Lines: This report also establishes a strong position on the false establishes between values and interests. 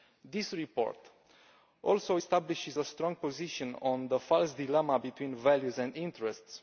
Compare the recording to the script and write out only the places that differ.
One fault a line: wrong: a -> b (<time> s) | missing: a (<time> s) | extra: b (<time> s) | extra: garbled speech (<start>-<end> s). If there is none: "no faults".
wrong: establishes -> dilemma (4.5 s)